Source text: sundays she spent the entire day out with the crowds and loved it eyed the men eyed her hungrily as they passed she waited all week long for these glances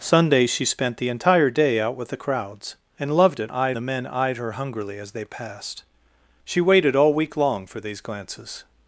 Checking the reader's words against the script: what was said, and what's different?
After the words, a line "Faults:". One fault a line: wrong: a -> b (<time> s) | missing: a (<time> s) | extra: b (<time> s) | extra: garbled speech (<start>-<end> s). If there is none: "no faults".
sundays she spent the entire day out with the crowds and loved it eyed the men eyed her hungrily as they passed she waited all week long for these glances
Faults:
no faults